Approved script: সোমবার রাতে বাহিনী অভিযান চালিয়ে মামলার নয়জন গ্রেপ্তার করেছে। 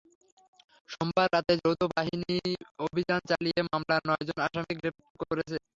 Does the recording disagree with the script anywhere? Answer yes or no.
yes